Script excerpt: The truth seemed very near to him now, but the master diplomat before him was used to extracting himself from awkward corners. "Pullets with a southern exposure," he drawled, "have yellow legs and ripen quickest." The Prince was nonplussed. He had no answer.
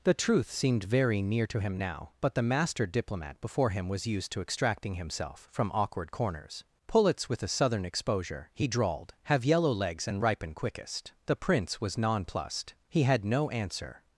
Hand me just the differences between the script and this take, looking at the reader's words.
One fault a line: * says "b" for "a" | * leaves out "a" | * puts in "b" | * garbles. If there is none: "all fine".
all fine